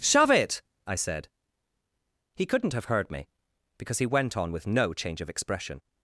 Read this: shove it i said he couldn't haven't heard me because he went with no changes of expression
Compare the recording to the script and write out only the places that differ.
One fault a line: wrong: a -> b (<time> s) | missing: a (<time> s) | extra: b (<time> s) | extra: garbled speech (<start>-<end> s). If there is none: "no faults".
wrong: haven't -> have (2.7 s)
extra: on (4.4 s)
wrong: changes -> change (4.9 s)